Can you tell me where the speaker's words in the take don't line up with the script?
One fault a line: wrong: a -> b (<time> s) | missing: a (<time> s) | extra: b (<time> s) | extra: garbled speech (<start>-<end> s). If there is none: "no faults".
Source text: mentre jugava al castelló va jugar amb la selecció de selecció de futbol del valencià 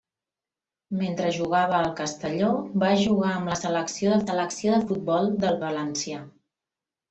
no faults